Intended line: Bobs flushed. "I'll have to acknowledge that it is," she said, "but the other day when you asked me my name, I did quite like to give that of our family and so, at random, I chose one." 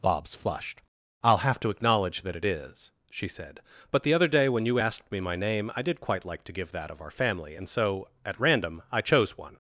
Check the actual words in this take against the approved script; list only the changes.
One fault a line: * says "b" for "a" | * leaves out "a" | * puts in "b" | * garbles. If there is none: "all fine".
all fine